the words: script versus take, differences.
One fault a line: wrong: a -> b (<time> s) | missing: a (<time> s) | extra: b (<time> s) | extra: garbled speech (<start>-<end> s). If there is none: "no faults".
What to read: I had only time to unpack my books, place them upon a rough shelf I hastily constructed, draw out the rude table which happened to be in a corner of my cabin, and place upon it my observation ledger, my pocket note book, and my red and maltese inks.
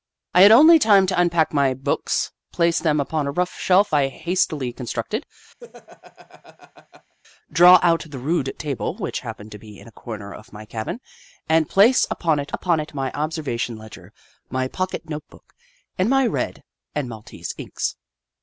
extra: upon it (12.5 s)